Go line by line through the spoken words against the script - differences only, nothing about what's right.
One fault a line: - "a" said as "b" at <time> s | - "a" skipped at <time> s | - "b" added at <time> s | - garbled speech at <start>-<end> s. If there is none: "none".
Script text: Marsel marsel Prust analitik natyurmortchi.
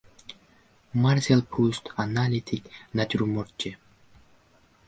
- "marsel" skipped at 1.4 s